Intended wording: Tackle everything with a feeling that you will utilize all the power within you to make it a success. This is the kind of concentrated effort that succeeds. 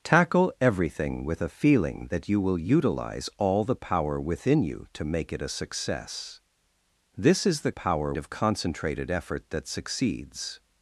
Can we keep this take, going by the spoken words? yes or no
no